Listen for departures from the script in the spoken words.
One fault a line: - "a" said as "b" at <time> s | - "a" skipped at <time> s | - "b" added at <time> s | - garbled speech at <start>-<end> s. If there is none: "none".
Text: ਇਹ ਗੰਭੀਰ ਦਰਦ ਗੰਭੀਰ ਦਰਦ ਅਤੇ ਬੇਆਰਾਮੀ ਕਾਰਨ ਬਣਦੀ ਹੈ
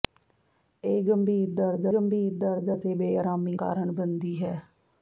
none